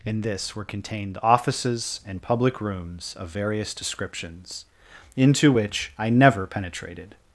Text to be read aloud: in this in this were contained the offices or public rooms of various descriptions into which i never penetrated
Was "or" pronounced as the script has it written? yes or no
no